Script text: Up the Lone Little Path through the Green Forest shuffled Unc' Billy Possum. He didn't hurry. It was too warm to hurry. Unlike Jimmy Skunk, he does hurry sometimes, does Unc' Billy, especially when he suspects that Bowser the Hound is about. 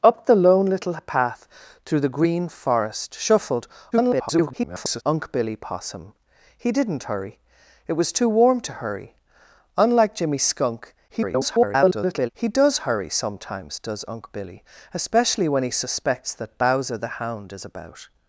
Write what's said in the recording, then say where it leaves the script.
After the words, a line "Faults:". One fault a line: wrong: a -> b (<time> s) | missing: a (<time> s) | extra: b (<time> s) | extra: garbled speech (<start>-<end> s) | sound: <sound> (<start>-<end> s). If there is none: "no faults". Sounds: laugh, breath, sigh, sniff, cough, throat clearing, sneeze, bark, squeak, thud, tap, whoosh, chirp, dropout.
Up the Lone Little Path through the Green Forest shuffled [garbled] Unc' Billy Possum. He didn't hurry. It was too warm to hurry. Unlike Jimmy Skunk, [garbled] he does hurry sometimes, does Unc' Billy, especially when he suspects that Bowser the Hound is about.
Faults:
extra: garbled speech (3.9-5.0 s)
extra: garbled speech (11.1-12.3 s)